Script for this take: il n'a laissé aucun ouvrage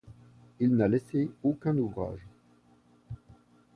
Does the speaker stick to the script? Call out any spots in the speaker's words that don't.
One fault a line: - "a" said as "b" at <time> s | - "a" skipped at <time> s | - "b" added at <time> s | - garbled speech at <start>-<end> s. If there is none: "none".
none